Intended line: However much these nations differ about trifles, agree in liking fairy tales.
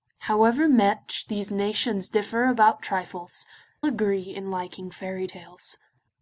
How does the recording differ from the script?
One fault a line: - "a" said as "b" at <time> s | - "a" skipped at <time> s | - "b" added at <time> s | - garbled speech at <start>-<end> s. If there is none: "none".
none